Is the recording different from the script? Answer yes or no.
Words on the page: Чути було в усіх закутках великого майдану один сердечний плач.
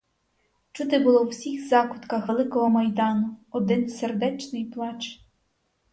no